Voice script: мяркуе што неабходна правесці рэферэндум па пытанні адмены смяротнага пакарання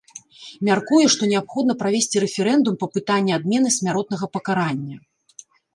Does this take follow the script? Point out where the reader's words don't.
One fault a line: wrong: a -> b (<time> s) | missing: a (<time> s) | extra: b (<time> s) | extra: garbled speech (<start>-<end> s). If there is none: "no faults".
no faults